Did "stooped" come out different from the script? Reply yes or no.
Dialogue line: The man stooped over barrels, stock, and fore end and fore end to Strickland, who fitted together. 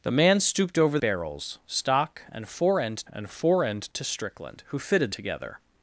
no